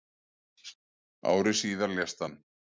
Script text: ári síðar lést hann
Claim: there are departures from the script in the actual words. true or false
false